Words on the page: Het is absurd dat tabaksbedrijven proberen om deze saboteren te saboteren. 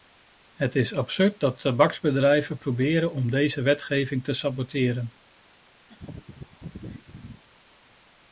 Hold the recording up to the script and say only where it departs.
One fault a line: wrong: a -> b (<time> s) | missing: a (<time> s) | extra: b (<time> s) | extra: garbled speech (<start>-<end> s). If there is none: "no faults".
wrong: saboteren -> wetgeving (3.6 s)